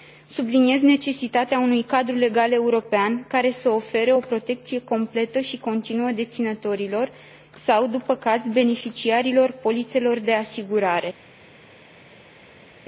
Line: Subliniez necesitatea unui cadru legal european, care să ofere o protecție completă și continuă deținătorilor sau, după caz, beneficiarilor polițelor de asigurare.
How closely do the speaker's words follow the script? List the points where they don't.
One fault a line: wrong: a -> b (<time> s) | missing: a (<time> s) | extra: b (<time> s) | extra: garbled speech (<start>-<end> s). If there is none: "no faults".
no faults